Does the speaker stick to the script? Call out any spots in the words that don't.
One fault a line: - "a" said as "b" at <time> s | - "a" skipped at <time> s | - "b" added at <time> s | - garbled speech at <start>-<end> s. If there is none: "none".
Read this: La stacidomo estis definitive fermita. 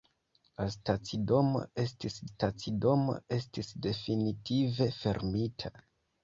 - "stacidomo estis" added at 2.3 s